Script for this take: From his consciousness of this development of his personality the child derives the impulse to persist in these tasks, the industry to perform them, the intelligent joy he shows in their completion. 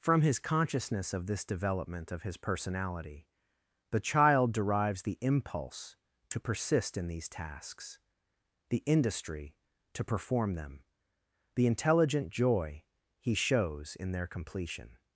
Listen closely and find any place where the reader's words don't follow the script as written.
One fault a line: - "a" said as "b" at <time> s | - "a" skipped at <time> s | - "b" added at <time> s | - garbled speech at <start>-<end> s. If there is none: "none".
none